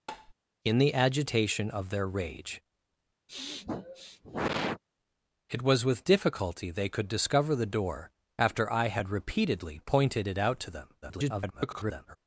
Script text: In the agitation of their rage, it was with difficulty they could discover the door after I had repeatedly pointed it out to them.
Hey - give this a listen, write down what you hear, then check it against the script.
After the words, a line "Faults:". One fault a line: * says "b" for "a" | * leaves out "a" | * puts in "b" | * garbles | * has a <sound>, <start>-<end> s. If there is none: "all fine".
In the agitation of their rage, it was with difficulty they could discover the door after I had repeatedly pointed it out to them. [garbled]
Faults:
* has a tap, 0.1-0.3 s
* has a sniff, 3.3-4.8 s
* garbles